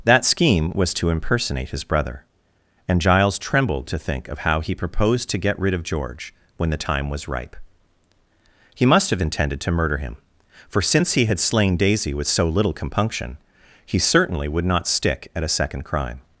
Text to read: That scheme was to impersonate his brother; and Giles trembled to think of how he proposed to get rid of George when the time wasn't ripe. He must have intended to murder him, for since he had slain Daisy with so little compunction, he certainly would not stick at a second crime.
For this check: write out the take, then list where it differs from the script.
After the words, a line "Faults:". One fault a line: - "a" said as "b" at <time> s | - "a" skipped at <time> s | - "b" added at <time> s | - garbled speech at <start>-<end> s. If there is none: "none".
That scheme was to impersonate his brother; and Giles trembled to think of how he proposed to get rid of George when the time was ripe. He must have intended to murder him, for since he had slain Daisy with so little compunction, he certainly would not stick at a second crime.
Faults:
- "wasn't" said as "was" at 7.1 s